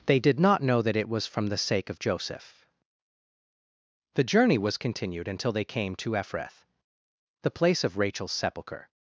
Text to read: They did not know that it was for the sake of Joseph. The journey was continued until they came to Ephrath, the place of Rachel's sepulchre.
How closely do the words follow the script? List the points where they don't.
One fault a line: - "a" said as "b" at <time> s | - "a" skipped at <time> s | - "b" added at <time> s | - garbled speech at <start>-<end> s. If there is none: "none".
- "for" said as "from" at 1.3 s